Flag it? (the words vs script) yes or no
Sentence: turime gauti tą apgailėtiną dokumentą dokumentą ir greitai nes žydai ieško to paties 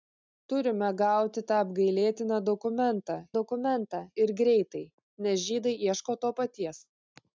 no